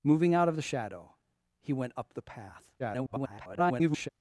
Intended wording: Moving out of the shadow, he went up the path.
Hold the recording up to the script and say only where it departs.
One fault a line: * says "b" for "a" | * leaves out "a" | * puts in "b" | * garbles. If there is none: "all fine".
* garbles